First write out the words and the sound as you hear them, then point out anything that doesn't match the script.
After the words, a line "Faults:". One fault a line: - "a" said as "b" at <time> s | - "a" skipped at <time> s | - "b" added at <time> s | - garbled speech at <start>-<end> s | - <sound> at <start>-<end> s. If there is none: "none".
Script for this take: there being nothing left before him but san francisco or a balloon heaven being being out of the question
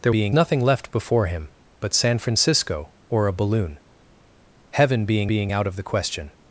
there being nothing left before him but san francisco or a balloon heaven being being out of the question
Faults:
none